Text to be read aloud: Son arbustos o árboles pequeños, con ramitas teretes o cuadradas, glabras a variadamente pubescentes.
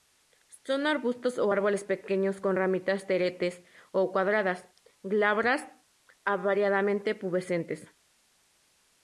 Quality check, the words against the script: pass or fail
pass